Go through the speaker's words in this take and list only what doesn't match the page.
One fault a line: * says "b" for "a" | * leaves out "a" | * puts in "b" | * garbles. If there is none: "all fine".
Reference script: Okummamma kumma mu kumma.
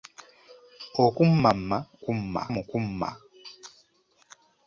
all fine